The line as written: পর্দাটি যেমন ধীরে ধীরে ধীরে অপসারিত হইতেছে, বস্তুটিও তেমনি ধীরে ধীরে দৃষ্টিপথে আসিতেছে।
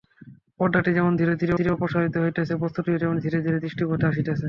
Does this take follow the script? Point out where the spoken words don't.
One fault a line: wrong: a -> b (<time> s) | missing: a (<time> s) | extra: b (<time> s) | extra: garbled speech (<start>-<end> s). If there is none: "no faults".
no faults